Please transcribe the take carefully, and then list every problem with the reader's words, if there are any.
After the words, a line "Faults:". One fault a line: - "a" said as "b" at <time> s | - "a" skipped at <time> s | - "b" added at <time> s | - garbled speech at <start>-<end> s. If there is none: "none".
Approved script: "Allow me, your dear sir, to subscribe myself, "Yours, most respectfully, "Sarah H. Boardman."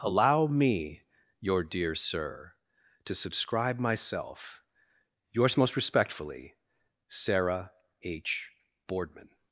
"Allow me, your dear sir, to subscribe myself, "Yours, most respectfully, "Sarah H. Boardman."
Faults:
none